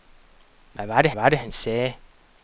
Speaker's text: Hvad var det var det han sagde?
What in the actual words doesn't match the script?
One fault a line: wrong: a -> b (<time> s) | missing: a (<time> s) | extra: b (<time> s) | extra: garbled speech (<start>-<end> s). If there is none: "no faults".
no faults